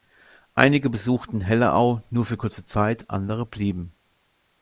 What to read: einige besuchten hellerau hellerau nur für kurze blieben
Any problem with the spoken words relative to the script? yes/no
yes